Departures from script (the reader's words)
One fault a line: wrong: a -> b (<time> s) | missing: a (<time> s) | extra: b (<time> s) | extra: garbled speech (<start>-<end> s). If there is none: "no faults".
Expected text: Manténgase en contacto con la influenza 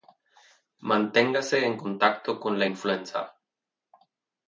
no faults